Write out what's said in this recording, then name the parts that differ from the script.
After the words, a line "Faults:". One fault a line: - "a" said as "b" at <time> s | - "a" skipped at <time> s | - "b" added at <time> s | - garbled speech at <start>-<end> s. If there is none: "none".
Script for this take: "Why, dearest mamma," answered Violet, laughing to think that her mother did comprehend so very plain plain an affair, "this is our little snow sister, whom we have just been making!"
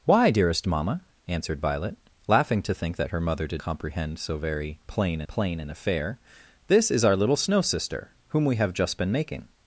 "Why, dearest mamma," answered Violet, laughing to think that her mother did comprehend so very plain plain an affair, "this is our little snow sister, whom we have just been making!"
Faults:
none